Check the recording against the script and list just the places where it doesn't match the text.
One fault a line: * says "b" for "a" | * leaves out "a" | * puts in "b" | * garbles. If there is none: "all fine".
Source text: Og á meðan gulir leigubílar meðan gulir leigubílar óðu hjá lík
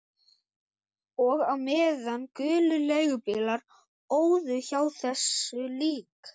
* leaves out "meðan gulir leigubílar"
* puts in "þessu"